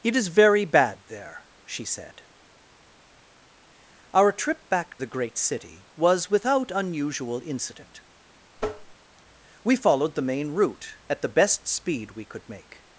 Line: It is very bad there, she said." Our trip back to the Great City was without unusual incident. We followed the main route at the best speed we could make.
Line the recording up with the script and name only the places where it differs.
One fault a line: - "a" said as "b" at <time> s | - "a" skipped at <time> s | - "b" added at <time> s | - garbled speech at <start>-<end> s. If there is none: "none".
- "to" skipped at 5.0 s